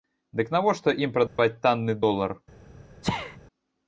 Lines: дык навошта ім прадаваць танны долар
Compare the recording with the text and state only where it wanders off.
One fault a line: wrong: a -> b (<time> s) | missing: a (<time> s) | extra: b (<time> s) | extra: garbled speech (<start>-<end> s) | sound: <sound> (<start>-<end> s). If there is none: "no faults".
sound: dropout (1.3-1.4 s)
sound: sneeze (3.0-3.4 s)